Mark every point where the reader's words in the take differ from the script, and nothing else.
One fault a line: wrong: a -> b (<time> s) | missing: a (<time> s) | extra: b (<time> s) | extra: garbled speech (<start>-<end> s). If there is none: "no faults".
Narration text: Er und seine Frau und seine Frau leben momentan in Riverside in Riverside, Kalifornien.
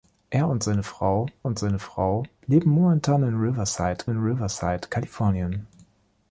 no faults